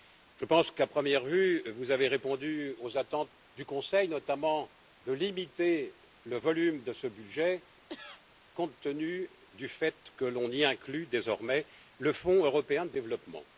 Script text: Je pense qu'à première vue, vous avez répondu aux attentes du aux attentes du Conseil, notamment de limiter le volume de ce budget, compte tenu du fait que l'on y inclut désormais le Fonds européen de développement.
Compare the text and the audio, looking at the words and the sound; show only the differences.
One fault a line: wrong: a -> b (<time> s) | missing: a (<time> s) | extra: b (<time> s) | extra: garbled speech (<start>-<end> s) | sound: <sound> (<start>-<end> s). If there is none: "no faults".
missing: aux attentes du (3.7 s)
sound: cough (7.9-8.2 s)